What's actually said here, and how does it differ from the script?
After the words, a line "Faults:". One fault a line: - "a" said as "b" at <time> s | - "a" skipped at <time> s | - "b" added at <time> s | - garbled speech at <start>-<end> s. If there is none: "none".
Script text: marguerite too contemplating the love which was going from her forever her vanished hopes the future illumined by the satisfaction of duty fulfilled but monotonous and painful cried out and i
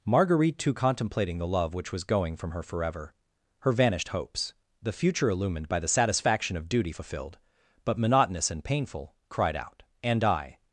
marguerite too contemplating the love which was going from her forever her vanished hopes the future illumined by the satisfaction of duty fulfilled but monotonous and painful cried out and i
Faults:
none